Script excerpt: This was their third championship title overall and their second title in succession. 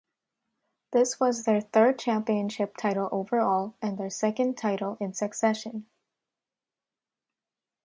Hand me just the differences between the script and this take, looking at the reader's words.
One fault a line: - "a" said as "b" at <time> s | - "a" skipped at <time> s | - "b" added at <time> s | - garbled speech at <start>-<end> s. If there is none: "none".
none